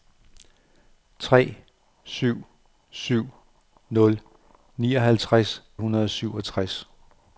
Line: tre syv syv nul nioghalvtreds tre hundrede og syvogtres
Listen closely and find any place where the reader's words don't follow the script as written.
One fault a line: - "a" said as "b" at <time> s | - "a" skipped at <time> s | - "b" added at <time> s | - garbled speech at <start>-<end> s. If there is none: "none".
- "tre" skipped at 5.6 s